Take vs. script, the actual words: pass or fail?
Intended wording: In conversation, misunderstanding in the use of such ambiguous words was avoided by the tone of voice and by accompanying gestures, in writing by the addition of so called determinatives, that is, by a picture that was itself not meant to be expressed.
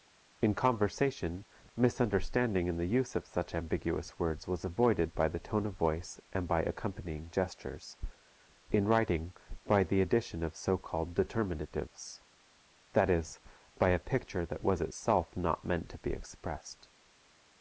pass